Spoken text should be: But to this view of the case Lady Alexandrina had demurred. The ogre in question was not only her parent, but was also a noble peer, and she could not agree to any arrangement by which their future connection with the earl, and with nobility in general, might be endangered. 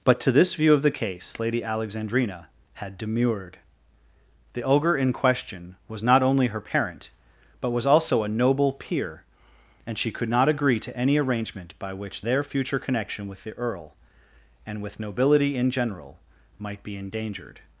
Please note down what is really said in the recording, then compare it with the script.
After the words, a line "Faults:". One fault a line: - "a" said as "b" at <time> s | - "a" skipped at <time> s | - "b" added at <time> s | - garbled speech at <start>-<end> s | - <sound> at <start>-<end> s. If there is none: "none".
But to this view of the case Lady Alexandrina had demurred. The ogre in question was not only her parent, but was also a noble peer, and she could not agree to any arrangement by which their future connection with the earl, and with nobility in general, might be endangered.
Faults:
none